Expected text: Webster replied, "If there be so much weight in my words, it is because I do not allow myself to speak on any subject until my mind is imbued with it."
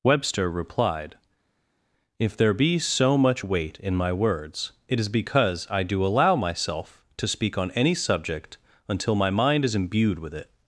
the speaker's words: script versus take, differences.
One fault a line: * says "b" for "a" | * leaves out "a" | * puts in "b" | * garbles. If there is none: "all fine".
* leaves out "not"